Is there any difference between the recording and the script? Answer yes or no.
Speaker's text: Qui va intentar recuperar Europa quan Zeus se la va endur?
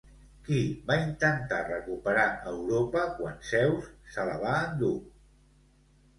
no